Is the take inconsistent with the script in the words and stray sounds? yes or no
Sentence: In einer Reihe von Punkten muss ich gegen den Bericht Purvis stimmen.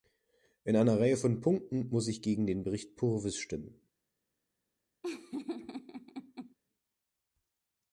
yes